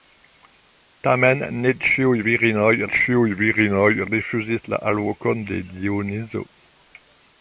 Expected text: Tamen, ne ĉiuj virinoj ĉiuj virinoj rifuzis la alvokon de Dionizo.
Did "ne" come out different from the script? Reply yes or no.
no